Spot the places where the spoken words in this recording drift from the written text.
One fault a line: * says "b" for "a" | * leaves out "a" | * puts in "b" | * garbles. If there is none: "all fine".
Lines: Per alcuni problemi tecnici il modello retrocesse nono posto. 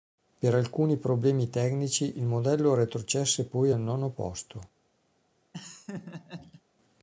* puts in "poi al"